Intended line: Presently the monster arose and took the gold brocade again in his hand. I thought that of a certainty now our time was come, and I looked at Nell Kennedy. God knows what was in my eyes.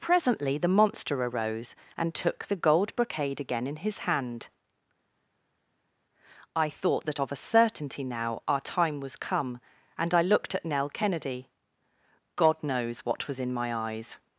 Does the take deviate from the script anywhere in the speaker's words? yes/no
no